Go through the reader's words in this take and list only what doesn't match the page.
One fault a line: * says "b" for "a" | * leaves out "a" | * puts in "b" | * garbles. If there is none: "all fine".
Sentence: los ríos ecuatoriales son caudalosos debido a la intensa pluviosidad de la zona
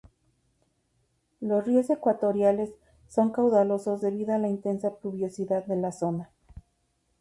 all fine